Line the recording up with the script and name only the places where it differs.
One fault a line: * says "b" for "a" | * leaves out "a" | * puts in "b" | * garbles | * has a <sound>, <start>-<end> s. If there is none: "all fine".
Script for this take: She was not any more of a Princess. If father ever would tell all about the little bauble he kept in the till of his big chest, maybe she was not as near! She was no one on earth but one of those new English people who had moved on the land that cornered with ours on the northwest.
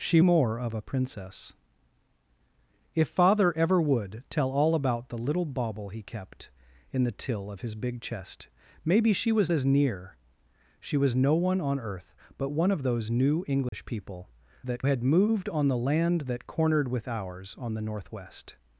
* leaves out "was not any"
* leaves out "not"
* has a dropout, 13.7-13.7 s
* says "that" for "who"